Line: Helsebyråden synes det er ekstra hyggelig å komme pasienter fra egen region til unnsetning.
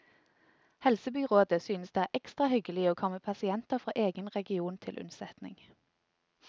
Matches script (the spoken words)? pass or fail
pass